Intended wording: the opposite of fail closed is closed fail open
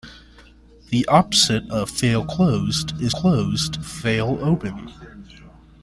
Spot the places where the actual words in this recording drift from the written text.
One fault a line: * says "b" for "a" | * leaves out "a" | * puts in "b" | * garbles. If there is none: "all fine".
all fine